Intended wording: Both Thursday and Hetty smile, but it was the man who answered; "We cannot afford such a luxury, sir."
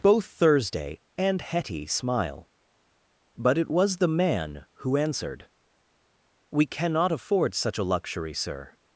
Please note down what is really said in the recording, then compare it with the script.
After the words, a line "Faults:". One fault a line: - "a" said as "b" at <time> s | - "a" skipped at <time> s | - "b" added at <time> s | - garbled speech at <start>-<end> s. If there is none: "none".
Both Thursday and Hetty smile, but it was the man who answered; "We cannot afford such a luxury, sir."
Faults:
none